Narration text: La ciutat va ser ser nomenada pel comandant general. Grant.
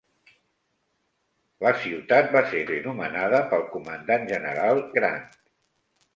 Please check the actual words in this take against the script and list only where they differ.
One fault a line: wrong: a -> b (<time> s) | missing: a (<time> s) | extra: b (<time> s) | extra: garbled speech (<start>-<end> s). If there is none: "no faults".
no faults